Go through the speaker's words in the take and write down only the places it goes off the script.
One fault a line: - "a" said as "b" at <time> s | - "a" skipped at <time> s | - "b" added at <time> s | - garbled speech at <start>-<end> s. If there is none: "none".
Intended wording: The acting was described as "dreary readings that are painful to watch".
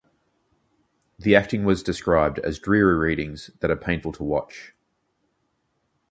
none